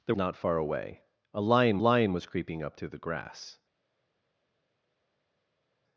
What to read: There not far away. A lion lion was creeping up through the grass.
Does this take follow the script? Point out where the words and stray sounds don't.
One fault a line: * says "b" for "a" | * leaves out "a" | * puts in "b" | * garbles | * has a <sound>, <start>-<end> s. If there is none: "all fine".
all fine